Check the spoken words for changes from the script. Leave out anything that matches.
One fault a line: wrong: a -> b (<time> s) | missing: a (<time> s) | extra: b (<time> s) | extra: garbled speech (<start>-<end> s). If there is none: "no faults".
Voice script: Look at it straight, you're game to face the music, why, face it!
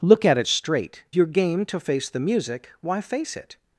no faults